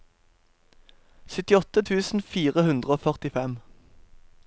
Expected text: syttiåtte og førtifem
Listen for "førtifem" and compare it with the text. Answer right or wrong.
right